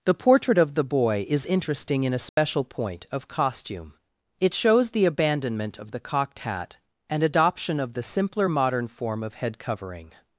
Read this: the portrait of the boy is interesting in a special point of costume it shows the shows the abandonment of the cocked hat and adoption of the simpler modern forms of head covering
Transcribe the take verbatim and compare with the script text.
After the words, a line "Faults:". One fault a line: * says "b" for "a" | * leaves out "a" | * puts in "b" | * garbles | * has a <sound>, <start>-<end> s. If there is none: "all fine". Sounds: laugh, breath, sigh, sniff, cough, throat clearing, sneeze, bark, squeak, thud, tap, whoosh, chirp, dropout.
the portrait of the boy is interesting in a special point of costume it shows the abandonment of the cocked hat and adoption of the simpler modern form of head covering
Faults:
* has a dropout, 2.3-2.4 s
* leaves out "shows the"
* says "form" for "forms"